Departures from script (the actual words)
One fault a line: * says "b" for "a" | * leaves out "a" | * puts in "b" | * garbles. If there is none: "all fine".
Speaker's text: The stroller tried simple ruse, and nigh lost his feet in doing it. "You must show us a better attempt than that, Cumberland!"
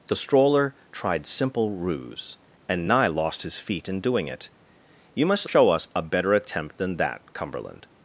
all fine